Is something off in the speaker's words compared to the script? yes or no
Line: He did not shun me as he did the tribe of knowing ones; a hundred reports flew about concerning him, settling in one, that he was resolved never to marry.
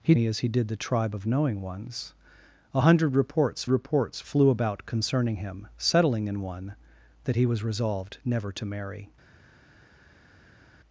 yes